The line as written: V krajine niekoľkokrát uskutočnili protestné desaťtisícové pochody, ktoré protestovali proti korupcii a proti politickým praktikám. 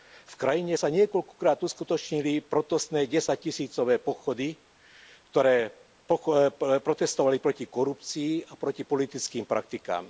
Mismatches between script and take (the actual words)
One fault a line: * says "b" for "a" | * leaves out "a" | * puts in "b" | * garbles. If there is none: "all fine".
* puts in "sa"